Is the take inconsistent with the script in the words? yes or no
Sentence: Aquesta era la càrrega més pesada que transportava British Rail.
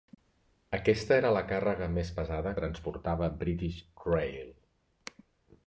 yes